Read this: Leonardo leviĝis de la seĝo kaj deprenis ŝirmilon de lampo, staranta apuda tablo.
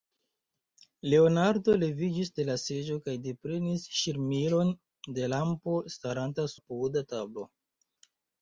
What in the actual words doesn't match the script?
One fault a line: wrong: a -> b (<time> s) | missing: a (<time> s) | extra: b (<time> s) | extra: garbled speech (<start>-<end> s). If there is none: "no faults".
no faults